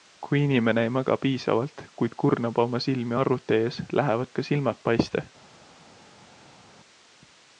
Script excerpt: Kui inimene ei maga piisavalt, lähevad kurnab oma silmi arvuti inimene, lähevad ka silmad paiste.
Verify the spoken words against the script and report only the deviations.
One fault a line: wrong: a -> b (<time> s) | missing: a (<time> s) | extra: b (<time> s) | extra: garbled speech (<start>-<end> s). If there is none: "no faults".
wrong: lähevad -> kuid (2.0 s)
wrong: inimene -> ees (3.7 s)